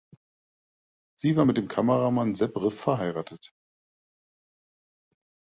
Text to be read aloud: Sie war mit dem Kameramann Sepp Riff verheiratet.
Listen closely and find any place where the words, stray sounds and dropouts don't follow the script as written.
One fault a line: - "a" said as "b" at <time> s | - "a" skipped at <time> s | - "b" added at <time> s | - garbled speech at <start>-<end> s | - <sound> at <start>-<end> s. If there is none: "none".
none